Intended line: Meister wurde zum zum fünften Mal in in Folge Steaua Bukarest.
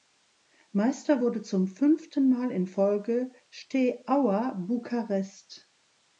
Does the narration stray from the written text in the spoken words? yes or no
yes